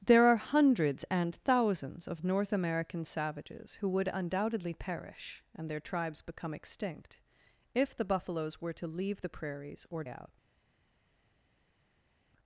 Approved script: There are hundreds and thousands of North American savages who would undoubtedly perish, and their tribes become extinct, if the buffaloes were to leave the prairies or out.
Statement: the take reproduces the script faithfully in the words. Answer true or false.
true